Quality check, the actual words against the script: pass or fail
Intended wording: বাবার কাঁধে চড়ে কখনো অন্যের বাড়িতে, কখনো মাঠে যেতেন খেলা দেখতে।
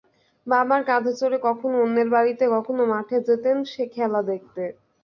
pass